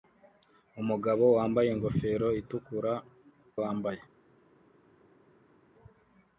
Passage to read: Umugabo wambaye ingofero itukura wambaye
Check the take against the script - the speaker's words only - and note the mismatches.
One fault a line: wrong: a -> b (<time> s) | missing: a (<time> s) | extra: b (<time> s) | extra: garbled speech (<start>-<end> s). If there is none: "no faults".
no faults